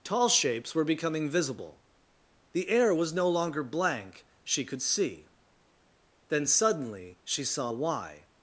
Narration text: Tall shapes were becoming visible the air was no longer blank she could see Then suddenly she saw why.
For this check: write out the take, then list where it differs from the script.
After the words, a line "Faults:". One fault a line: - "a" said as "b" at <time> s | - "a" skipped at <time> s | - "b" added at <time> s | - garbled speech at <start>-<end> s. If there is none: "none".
Tall shapes were becoming visible the air was no longer blank she could see Then suddenly she saw why.
Faults:
none